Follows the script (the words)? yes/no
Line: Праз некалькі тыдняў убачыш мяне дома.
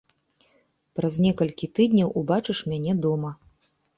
yes